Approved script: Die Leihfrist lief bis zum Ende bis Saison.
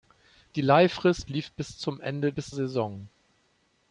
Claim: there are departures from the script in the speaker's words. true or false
false